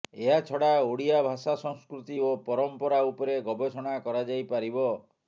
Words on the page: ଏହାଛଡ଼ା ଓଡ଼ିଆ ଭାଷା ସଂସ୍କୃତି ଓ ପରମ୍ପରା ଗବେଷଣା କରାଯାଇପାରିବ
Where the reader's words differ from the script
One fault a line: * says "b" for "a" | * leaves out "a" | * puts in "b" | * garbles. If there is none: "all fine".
* puts in "ଉପରେ"